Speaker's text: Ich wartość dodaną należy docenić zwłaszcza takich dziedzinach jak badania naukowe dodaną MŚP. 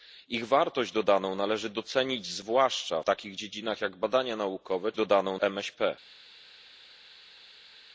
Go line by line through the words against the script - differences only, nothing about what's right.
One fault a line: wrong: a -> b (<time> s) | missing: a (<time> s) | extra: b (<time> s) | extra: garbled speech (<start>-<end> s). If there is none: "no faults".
no faults